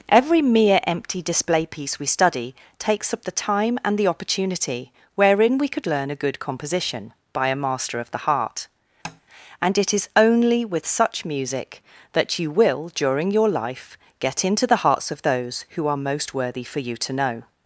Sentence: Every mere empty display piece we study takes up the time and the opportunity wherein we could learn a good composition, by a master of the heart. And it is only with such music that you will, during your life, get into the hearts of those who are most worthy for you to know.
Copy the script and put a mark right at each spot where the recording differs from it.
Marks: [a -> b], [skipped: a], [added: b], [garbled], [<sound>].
Every mere empty display piece we study takes up the time and the opportunity wherein we could learn a good composition, by a master of the heart. [tap] And it is only with such music that you will, during your life, get into the hearts of those who are most worthy for you to know.